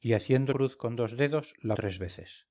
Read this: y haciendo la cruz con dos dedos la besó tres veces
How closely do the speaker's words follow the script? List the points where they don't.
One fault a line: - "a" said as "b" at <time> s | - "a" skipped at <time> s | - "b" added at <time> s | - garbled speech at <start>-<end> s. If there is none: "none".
- "la" skipped at 0.5 s
- "besó" skipped at 1.7 s